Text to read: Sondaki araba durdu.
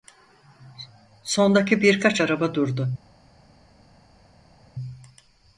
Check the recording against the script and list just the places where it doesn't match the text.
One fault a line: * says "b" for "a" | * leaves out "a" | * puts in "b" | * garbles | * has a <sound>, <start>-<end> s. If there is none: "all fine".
* puts in "birkaç"